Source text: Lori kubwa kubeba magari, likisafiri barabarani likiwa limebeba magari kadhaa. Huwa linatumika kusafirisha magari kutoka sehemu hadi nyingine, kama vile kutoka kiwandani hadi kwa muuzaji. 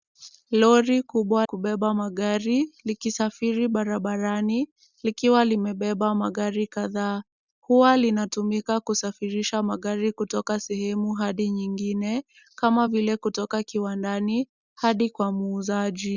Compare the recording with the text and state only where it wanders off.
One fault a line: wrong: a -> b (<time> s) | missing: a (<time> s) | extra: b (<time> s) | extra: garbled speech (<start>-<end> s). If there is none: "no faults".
no faults